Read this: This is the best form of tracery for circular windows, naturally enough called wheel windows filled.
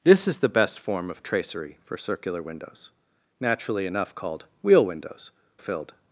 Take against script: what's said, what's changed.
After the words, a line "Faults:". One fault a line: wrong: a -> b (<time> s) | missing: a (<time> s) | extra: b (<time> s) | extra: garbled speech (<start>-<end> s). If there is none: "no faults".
This is the best form of tracery for circular windows, naturally enough called wheel windows filled.
Faults:
no faults